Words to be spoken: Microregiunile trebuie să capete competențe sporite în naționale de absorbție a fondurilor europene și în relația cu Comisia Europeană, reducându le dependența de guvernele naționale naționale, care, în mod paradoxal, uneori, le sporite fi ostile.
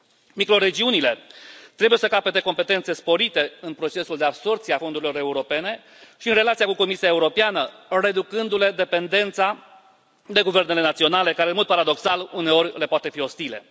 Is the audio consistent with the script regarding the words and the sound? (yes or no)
no